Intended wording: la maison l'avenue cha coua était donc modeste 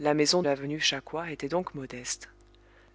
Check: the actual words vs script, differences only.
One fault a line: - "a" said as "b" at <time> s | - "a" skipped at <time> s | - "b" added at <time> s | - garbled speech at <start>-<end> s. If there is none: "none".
none